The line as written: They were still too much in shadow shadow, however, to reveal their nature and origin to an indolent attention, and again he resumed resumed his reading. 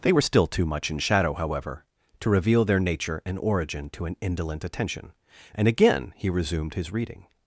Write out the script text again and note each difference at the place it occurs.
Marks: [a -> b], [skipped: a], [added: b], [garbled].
They were still too much in shadow [skipped: shadow,] however, to reveal their nature and origin to an indolent attention, and again he resumed [skipped: resumed] his reading.